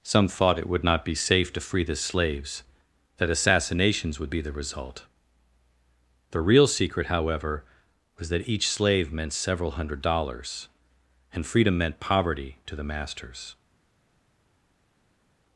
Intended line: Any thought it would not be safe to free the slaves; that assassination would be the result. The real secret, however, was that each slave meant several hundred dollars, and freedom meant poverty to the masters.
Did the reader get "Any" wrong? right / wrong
wrong